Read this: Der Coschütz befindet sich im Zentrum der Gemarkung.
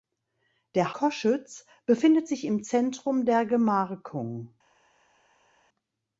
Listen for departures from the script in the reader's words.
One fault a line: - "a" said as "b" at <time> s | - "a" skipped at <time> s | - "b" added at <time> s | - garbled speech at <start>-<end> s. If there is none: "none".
none